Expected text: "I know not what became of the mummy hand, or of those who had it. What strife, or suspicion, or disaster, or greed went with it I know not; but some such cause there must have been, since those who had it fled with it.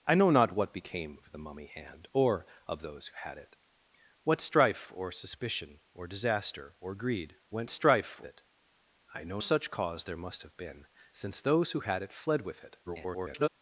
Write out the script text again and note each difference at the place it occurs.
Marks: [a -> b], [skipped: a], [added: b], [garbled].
"I know not what became of the mummy hand, or of those who had it. What strife, or suspicion, or disaster, or greed went [with -> strife] it I know [skipped: not; but some] such cause there must have been, since those who had it fled with it. [garbled]